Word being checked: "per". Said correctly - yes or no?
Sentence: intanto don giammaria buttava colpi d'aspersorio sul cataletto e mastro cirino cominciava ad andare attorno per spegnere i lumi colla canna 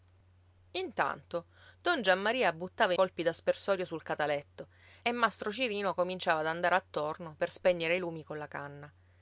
yes